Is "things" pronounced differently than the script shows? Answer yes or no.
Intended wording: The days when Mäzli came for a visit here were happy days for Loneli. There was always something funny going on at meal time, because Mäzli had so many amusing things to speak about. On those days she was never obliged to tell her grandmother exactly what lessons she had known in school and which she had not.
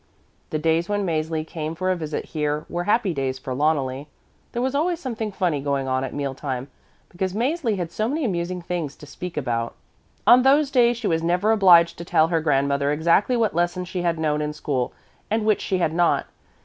no